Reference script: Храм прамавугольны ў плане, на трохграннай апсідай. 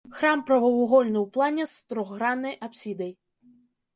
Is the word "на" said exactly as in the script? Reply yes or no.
no